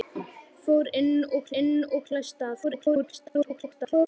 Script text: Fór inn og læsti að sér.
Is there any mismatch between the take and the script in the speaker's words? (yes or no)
yes